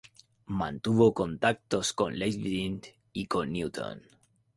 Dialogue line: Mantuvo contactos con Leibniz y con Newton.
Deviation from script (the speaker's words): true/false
false